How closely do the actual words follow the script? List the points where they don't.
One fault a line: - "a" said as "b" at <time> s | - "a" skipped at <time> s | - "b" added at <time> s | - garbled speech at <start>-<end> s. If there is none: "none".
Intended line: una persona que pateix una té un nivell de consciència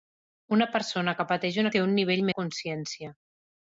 none